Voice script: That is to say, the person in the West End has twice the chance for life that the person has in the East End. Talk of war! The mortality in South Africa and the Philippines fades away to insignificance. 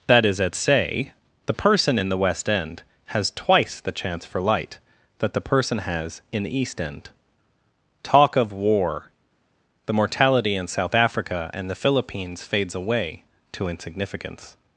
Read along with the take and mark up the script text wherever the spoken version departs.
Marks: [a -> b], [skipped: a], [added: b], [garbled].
That is [to -> at] say, the person in the West End has twice the chance for [life -> light] that the person has in the East End. Talk of war! The mortality in South Africa and the Philippines fades away to insignificance.